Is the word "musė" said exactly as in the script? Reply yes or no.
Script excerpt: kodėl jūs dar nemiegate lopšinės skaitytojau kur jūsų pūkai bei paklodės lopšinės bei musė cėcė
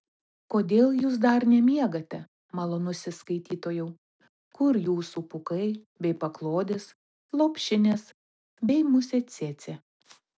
yes